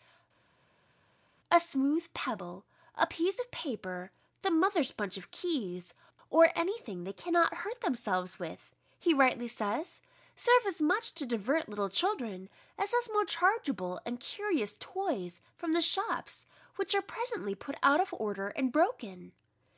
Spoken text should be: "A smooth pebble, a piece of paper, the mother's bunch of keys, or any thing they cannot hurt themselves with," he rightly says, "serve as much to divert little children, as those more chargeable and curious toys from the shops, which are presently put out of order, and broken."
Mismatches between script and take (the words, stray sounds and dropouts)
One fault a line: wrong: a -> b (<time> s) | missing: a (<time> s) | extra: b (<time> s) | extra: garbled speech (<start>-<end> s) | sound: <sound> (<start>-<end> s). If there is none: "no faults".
no faults